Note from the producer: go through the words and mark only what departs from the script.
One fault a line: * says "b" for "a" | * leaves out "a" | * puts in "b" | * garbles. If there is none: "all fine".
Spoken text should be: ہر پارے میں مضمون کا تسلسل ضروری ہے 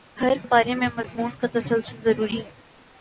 all fine